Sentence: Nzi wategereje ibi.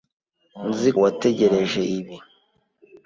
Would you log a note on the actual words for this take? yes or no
no